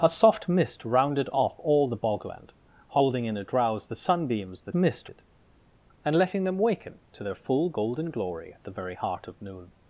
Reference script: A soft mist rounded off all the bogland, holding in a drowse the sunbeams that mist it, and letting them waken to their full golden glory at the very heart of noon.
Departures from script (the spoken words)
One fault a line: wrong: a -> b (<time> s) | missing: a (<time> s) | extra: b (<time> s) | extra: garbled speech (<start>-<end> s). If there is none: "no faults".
no faults